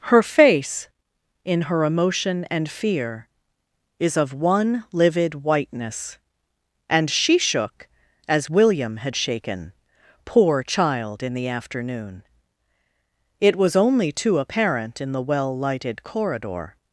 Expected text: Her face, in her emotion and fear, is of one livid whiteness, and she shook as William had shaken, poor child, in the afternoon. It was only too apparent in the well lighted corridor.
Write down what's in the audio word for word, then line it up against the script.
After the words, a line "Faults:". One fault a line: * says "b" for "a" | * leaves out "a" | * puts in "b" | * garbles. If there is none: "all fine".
Her face, in her emotion and fear, is of one livid whiteness, and she shook as William had shaken, poor child, in the afternoon. It was only too apparent in the well lighted corridor.
Faults:
all fine